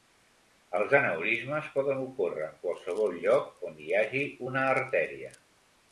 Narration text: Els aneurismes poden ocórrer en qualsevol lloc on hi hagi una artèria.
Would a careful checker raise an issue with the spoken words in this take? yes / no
no